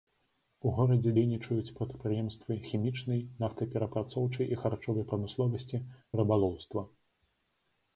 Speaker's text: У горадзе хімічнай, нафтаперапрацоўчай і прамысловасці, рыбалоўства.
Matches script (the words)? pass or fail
fail